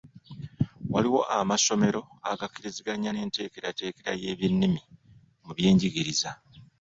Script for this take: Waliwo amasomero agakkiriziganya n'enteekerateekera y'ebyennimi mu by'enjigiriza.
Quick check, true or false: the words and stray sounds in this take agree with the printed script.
true